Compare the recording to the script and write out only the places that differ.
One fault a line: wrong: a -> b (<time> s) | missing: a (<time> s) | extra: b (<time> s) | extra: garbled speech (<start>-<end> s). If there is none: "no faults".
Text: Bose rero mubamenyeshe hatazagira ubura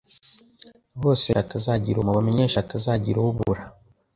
wrong: rero -> hatazagira (1.4 s)